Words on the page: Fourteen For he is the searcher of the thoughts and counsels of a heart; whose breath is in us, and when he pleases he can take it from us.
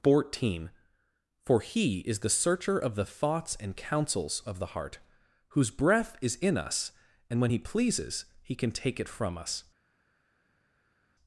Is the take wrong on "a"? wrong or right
wrong